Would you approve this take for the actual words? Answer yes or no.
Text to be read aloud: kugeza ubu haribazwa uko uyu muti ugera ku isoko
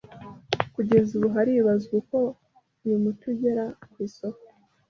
yes